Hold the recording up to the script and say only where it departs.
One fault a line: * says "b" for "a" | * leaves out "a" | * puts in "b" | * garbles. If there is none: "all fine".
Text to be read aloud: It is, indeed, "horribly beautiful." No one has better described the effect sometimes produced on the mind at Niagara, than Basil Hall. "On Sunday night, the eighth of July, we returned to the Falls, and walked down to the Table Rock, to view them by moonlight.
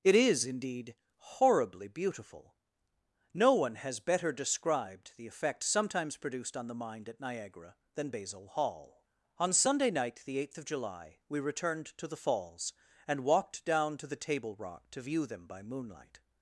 all fine